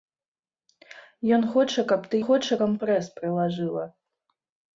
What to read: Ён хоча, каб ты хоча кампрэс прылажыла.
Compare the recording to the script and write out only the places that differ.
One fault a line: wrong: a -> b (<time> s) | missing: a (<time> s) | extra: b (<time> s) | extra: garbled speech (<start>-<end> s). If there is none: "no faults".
no faults